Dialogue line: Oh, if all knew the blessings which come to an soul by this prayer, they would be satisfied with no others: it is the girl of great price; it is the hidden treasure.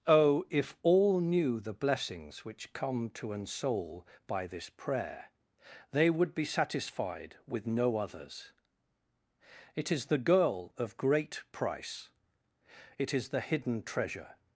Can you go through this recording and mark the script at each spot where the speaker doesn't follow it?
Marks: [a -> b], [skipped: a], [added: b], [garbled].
Oh, if all knew the blessings which come to an soul by this prayer, they would be satisfied with no others: it is the girl of great price; it is the hidden treasure.